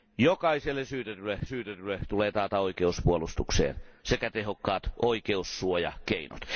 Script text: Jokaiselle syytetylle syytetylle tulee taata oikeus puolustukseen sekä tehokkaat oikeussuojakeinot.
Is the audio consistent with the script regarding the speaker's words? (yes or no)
yes